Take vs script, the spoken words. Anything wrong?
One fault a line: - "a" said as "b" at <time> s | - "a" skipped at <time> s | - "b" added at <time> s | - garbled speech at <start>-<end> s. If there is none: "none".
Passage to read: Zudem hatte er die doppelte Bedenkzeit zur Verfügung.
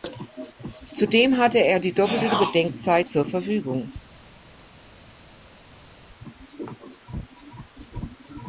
none